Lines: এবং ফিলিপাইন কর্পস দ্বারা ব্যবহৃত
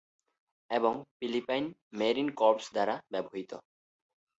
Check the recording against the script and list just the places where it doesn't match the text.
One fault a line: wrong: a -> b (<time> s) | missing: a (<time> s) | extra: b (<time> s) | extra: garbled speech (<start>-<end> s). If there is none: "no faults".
extra: মেরিন (1.9 s)